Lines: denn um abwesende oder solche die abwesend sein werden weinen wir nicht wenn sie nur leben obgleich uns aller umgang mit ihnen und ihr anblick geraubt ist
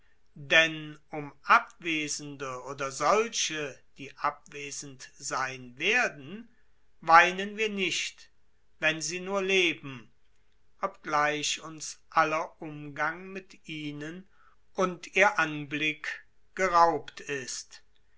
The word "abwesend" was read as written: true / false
true